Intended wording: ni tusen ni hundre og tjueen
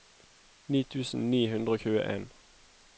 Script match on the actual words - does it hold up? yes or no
yes